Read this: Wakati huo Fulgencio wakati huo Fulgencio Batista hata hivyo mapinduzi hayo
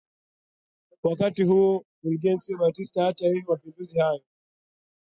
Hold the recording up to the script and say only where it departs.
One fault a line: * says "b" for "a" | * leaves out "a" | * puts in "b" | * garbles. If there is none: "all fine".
* leaves out "wakati huo Fulgencio"